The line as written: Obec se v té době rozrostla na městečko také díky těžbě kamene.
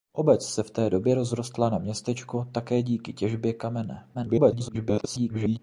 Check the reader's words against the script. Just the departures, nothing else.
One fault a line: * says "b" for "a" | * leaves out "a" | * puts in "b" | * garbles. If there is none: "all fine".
* garbles